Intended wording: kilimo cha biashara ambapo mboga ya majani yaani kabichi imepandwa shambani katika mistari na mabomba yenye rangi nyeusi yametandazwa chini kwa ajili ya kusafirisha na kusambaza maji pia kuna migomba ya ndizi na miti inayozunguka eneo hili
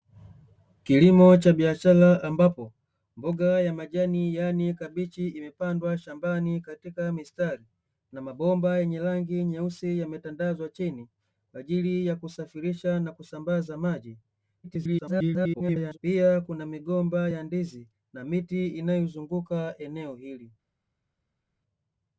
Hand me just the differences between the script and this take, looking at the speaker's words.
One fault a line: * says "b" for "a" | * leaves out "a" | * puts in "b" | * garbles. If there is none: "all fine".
* garbles